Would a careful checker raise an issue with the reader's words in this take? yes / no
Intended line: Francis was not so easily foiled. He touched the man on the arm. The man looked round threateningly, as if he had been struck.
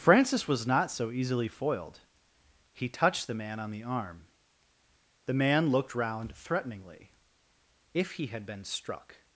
yes